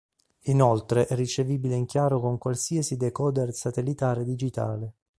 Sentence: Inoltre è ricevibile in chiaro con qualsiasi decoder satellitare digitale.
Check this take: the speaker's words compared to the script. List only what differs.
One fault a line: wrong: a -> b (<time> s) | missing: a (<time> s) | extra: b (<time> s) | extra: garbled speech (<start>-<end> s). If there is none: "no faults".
no faults